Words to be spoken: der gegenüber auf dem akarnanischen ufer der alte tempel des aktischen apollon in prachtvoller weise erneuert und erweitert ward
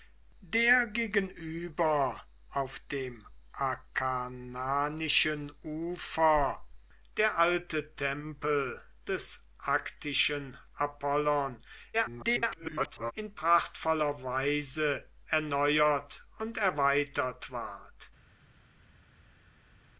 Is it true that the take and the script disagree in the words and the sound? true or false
true